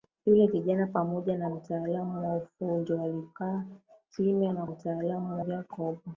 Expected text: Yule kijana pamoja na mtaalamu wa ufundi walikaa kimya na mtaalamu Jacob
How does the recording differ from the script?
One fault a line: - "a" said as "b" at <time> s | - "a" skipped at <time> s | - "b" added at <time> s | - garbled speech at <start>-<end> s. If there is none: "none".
none